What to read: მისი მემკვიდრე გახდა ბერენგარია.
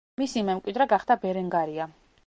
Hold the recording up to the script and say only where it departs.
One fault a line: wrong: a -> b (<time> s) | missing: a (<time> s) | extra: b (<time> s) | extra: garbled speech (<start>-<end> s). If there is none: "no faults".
no faults